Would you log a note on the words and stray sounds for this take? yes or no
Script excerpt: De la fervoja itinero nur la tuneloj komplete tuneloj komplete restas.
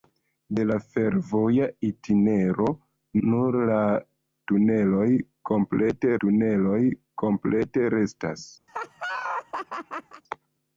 yes